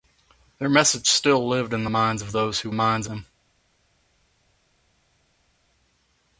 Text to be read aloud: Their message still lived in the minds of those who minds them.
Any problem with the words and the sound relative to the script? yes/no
no